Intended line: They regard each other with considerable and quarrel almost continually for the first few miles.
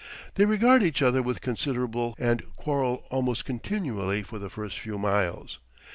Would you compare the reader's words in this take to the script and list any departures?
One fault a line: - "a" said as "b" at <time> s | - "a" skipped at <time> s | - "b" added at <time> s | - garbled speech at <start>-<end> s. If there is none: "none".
none